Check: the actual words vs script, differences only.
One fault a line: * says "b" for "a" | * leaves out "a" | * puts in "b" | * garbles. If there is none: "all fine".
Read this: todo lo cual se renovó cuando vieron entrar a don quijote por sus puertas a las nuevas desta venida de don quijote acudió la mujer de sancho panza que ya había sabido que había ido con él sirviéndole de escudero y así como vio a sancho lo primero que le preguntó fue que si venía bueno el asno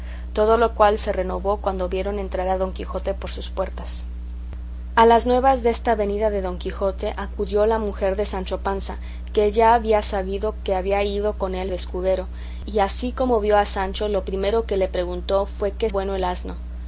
* leaves out "sirviéndole"
* leaves out "si venía"